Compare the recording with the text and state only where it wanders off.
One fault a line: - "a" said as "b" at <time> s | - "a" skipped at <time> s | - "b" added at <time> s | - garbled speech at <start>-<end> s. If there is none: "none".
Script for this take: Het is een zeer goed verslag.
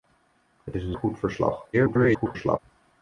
- "zeer" skipped at 1.0 s
- garbled speech at 1.7-2.6 s